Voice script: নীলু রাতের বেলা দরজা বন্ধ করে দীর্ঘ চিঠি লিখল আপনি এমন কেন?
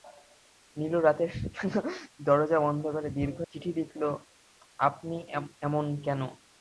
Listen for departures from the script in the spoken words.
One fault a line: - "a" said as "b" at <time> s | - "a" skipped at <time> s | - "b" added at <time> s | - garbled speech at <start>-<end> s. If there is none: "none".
none